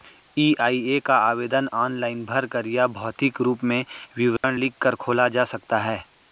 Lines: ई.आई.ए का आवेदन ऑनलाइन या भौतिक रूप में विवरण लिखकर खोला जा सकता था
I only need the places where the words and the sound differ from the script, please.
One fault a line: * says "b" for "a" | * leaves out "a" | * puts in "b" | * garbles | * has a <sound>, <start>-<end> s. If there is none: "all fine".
* puts in "भरकर"
* has a dropout, 4.4-4.4 s
* says "है" for "था"